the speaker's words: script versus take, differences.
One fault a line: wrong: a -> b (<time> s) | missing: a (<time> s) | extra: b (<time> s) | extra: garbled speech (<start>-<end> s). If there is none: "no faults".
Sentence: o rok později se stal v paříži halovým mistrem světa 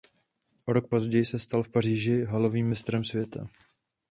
no faults